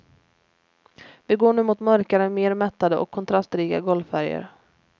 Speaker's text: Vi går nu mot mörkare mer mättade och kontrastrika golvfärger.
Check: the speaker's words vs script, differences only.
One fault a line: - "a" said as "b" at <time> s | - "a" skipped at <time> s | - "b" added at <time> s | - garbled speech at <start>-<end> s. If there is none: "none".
none